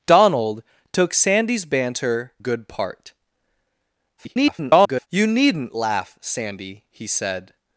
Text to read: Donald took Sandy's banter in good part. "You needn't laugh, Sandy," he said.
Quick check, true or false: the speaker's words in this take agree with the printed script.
false